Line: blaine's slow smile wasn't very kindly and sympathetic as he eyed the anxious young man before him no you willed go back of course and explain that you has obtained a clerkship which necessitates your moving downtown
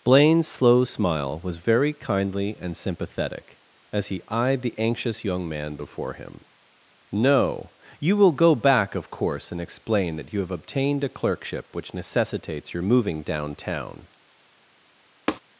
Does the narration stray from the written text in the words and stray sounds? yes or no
yes